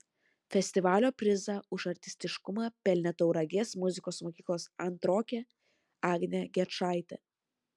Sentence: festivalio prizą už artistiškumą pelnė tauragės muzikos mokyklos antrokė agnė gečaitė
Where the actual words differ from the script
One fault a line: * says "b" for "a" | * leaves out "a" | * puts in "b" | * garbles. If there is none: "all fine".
all fine